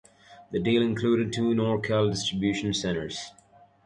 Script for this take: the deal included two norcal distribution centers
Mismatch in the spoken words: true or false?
false